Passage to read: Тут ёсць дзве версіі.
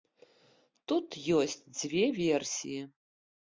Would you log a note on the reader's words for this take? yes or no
no